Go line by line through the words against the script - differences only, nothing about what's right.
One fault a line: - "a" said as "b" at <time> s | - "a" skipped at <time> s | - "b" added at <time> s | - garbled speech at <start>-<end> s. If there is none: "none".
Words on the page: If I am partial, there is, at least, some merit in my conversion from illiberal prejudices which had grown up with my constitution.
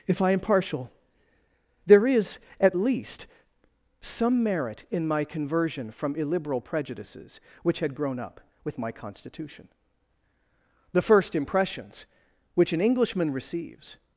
- "The first impressions which an Englishman receives" added at 10.9 s